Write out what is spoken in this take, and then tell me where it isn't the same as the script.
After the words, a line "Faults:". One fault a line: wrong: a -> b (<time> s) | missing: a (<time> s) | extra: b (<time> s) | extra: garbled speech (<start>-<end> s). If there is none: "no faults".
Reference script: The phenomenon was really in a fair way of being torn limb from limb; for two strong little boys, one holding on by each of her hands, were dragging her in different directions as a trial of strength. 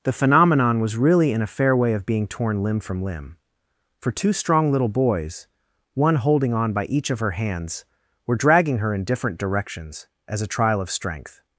The phenomenon was really in a fair way of being torn limb from limb; for two strong little boys, one holding on by each of her hands, were dragging her in different directions as a trial of strength.
Faults:
no faults